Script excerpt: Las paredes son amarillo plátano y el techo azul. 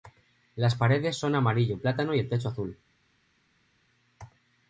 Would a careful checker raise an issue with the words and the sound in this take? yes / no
no